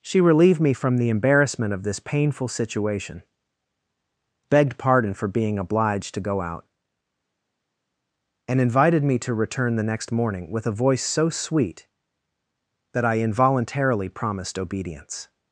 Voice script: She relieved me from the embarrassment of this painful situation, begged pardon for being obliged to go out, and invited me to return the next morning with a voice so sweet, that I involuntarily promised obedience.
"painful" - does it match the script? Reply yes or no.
yes